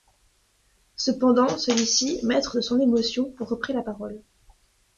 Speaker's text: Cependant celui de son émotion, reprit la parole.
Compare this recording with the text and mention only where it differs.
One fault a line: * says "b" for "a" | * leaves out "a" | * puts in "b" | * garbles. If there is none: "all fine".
* puts in "ci maître"